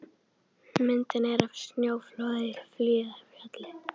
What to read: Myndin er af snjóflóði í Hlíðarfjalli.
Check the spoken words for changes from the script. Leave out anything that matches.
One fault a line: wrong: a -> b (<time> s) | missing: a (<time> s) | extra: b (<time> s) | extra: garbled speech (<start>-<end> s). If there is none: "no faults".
no faults